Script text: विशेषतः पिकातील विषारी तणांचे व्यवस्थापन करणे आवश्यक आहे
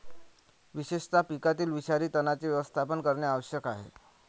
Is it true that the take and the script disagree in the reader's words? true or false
false